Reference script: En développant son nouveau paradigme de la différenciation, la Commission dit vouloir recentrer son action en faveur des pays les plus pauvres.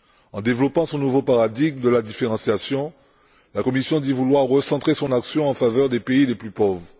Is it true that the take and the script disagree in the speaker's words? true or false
false